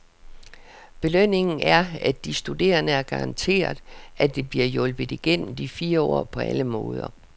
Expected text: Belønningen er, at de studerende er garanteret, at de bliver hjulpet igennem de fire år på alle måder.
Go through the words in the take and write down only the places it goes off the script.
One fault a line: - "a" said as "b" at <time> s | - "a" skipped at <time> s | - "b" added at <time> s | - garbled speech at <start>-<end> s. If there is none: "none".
none